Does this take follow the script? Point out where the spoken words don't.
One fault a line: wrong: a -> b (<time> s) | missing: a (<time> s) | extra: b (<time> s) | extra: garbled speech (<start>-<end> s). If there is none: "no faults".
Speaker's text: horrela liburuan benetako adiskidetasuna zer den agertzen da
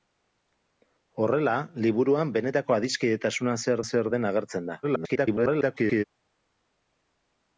extra: zer (3.9 s)
extra: garbled speech (4.8-6.0 s)